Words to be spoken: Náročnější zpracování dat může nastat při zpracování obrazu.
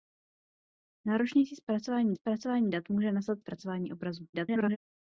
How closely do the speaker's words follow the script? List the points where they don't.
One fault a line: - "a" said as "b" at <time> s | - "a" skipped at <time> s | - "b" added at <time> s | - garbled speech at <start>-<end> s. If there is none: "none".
- "zpracování" added at 2.1 s
- "při" skipped at 3.4 s
- garbled speech at 4.3-4.8 s